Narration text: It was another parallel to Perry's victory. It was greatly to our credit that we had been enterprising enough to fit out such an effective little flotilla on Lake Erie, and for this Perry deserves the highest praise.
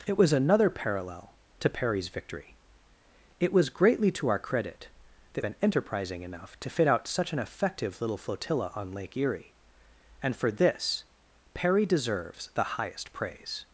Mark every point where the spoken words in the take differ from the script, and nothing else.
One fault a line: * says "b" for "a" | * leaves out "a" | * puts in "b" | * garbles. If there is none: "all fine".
* leaves out "we had"